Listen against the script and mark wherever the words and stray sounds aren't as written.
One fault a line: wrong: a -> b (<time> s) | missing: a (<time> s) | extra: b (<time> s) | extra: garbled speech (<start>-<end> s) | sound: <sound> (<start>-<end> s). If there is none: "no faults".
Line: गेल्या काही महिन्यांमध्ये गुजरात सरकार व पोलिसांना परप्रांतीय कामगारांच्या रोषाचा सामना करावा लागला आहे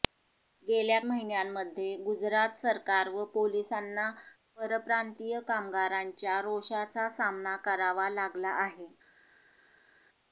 missing: काही (1.0 s)